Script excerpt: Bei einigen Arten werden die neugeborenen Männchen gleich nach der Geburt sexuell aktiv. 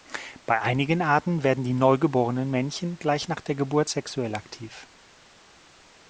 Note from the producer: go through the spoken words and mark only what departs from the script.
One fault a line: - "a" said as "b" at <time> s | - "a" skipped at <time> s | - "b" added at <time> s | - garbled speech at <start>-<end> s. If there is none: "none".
none